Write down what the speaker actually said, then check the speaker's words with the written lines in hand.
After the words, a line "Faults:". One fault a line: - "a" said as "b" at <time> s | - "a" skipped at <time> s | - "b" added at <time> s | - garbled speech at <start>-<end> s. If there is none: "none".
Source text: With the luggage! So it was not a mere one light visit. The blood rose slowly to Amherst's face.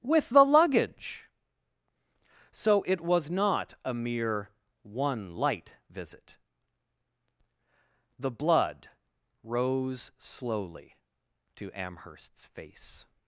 With the luggage! So it was not a mere one light visit. The blood rose slowly to Amherst's face.
Faults:
none